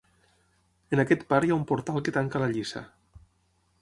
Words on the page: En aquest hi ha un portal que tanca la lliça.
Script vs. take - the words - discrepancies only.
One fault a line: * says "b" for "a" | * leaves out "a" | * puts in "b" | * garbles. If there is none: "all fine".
* puts in "part"